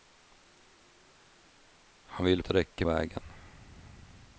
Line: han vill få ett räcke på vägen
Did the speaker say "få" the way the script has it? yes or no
no